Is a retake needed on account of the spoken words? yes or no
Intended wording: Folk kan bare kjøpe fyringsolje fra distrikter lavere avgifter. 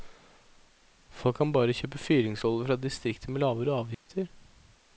yes